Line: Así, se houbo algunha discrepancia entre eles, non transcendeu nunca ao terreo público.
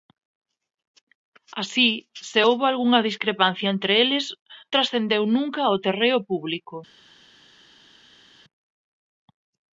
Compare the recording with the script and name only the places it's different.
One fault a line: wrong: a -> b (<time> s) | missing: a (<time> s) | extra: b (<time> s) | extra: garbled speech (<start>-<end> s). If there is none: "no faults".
missing: non (4.2 s)